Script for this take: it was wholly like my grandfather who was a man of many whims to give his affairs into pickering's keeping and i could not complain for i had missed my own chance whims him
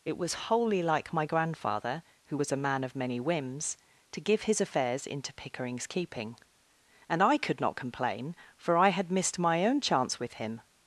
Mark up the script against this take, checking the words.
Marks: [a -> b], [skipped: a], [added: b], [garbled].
it was wholly like my grandfather who was a man of many whims to give his affairs into pickering's keeping and i could not complain for i had missed my own chance [whims -> with] him